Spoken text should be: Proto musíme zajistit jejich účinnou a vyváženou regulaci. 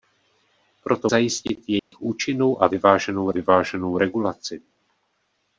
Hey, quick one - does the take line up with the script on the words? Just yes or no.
no